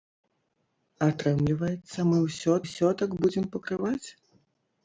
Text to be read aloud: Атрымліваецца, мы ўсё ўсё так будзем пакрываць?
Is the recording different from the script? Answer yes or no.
no